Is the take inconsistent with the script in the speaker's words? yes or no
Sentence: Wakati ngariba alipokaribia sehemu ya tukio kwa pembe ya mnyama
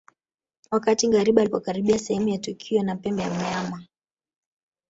yes